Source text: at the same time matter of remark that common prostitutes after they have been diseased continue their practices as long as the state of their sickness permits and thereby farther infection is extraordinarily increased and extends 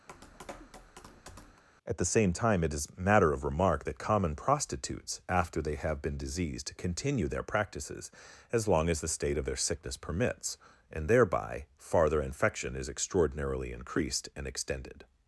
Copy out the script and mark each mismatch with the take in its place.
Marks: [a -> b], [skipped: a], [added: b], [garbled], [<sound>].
[tap] at the same time [added: it is] matter of remark that common prostitutes after they have been diseased continue their practices as long as the state of their sickness permits and thereby farther infection is extraordinarily increased and [extends -> extended]